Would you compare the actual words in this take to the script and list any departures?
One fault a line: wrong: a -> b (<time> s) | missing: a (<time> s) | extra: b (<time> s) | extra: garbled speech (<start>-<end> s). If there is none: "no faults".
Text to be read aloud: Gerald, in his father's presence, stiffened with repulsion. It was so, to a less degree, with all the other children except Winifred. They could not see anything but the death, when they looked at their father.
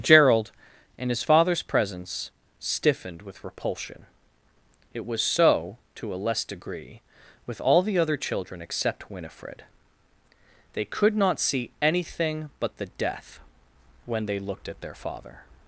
no faults